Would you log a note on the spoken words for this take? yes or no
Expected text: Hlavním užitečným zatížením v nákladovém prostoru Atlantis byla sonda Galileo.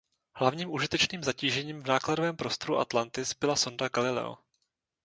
no